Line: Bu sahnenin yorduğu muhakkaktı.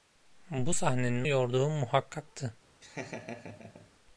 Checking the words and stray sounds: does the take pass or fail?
fail